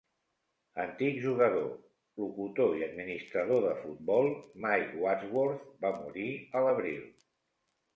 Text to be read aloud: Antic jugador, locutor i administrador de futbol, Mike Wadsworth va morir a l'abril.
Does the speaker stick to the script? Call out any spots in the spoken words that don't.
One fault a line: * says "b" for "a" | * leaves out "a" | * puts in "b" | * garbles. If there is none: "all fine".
all fine